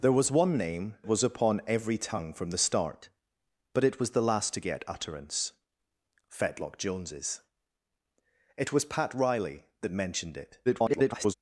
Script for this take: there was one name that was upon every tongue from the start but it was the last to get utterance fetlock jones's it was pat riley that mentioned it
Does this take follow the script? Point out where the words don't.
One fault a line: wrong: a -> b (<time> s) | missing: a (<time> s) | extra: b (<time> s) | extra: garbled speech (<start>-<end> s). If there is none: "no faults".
missing: that (1.0 s)
extra: garbled speech (10.7-11.3 s)